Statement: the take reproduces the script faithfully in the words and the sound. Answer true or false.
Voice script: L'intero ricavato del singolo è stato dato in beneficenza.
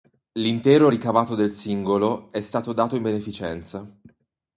true